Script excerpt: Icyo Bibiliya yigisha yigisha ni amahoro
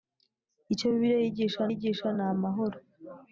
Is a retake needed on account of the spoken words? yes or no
no